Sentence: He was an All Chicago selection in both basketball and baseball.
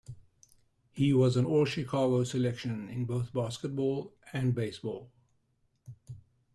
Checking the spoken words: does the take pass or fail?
pass